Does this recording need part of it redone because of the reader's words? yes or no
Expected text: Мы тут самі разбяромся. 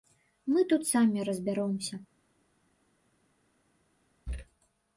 no